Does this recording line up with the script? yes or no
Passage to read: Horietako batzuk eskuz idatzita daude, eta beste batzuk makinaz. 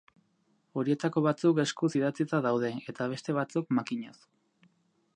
yes